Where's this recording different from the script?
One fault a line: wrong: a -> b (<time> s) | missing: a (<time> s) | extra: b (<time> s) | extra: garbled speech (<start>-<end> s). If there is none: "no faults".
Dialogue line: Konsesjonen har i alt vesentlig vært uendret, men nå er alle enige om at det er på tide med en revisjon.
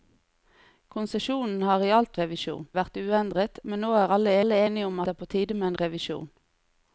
wrong: vesentlig -> revisjon (2.2 s)
extra: alle (4.4 s)
missing: at (5.0 s)